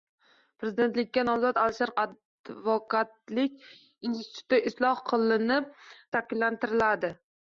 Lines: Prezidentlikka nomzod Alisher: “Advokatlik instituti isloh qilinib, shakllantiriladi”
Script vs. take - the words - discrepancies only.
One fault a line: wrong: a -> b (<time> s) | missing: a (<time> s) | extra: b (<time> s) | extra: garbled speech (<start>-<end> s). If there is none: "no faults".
no faults